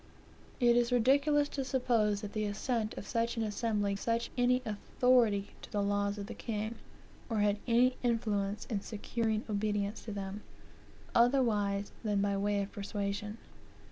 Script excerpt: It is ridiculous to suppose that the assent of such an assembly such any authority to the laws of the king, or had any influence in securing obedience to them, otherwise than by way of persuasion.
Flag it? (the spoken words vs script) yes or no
no